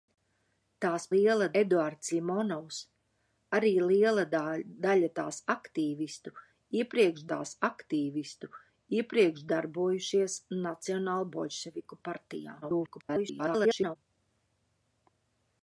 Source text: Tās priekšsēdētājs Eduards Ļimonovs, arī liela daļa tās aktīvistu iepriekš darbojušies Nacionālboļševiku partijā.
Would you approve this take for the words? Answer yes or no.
no